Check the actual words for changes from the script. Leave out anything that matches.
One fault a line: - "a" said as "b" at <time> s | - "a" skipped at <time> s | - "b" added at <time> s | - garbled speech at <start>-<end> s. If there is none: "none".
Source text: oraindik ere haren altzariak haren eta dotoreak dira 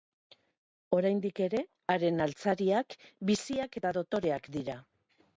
- "haren" said as "biziak" at 3.3 s